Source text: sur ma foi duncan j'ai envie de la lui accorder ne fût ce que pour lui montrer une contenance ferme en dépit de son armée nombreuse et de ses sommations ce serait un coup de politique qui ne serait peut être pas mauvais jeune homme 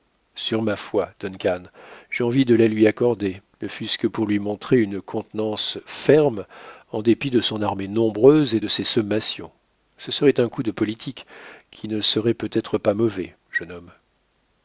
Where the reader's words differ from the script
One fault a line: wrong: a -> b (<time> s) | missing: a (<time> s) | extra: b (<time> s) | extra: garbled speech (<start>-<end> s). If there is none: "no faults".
no faults